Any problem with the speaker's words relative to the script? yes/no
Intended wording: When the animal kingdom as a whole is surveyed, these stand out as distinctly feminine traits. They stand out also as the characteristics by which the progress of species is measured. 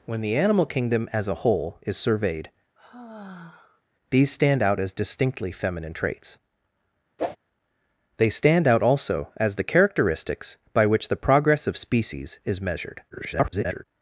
yes